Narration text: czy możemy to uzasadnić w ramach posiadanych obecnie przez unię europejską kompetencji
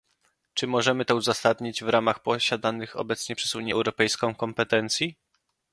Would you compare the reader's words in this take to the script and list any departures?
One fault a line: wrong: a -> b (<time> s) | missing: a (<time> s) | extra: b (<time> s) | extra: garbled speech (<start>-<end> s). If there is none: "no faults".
no faults